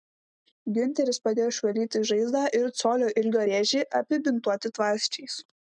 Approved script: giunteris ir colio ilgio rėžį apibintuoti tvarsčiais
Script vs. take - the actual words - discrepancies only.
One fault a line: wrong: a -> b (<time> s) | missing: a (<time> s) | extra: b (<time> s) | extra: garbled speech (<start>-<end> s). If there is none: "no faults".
extra: padėjo išvalyti žaizdą (1.3 s)